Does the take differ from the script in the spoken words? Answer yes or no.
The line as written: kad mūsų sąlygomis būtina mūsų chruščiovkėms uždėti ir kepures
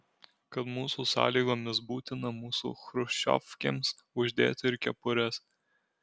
no